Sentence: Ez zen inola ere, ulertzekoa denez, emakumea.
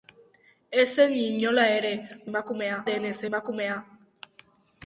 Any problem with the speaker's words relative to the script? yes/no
yes